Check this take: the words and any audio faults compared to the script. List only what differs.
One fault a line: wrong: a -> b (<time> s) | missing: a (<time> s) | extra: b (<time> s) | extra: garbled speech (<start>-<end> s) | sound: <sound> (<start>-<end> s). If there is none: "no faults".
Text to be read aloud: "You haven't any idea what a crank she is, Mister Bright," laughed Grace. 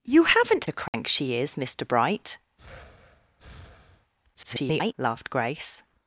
missing: any idea what (0.7 s)
sound: dropout (0.9-0.9 s)
sound: breath (2.6-4.1 s)
extra: garbled speech (4.3-4.9 s)